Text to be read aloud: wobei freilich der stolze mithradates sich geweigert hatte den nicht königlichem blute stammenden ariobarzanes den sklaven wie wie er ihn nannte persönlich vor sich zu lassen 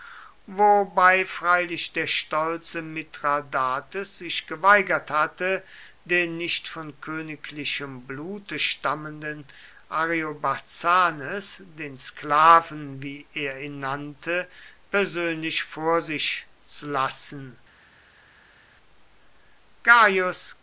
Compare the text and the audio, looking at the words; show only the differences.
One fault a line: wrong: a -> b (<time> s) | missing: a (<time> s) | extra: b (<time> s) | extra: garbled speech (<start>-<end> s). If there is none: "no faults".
extra: von (6.7 s)
missing: wie (13.3 s)